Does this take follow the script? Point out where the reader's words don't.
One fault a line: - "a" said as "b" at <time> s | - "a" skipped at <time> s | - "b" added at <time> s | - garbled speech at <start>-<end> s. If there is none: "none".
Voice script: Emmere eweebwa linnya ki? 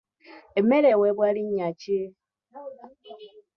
none